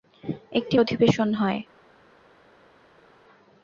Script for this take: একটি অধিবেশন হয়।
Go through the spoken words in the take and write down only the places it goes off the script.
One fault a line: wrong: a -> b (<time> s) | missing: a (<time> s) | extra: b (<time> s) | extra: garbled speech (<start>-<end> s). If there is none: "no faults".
no faults